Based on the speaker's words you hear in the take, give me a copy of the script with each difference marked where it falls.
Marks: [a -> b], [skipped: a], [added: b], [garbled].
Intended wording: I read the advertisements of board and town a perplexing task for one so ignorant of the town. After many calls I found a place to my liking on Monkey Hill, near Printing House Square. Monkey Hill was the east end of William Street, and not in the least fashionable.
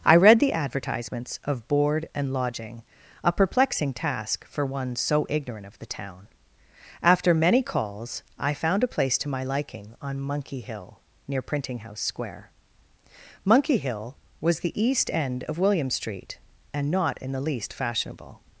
I read the advertisements of board and [town -> lodging] a perplexing task for one so ignorant of the town. After many calls I found a place to my liking on Monkey Hill, near Printing House Square. Monkey Hill was the east end of William Street, and not in the least fashionable.